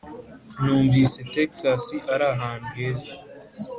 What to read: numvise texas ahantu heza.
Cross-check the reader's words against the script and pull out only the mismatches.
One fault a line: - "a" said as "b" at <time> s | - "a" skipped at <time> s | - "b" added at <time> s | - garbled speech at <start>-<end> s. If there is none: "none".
- "ari" added at 2.1 s